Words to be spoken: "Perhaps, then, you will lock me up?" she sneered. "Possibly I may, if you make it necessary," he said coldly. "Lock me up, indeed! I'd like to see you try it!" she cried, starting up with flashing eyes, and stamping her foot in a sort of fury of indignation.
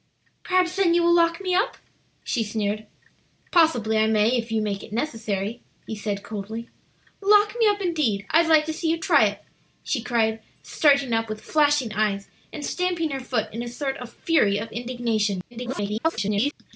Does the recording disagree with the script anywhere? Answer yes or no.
yes